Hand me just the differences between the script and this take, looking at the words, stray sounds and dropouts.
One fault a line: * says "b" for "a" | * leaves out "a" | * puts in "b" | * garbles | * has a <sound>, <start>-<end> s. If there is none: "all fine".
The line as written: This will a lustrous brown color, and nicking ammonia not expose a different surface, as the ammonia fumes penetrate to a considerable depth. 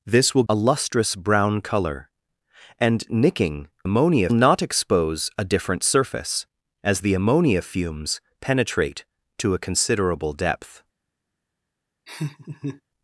* has a laugh, 12.1-12.8 s